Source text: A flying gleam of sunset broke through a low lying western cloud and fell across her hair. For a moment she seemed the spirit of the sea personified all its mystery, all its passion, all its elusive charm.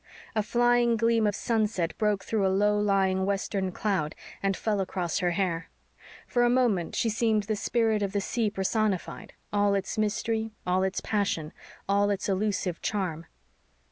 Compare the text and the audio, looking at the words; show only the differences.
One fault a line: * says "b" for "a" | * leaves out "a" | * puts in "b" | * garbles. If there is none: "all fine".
all fine